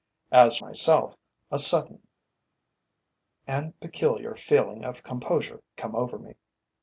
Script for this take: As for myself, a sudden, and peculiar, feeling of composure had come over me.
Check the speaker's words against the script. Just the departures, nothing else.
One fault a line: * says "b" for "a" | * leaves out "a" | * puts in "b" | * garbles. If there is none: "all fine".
* leaves out "for"
* leaves out "had"